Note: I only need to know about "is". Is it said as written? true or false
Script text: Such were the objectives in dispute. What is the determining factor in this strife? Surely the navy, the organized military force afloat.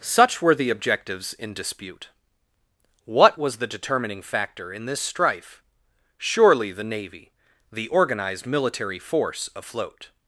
false